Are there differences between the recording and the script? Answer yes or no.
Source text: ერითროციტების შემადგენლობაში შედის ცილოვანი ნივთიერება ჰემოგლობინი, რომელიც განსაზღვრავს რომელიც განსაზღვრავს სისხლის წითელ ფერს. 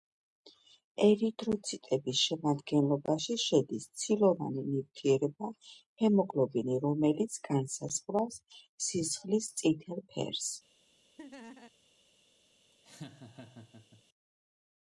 yes